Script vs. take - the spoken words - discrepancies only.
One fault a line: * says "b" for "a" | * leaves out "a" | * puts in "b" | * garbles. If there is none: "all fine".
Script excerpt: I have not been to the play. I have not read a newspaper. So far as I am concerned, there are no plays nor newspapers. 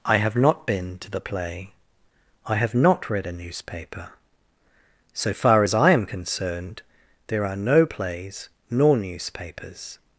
all fine